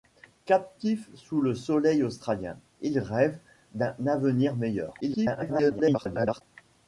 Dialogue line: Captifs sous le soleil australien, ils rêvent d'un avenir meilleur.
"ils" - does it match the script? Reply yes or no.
yes